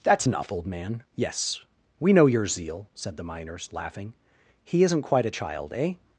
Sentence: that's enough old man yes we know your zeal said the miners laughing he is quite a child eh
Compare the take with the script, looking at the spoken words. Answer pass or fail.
fail